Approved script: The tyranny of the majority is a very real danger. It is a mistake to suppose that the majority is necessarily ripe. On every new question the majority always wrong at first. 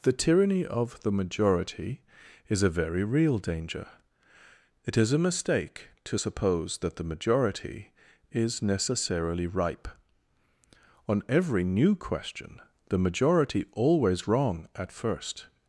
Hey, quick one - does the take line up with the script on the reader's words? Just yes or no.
yes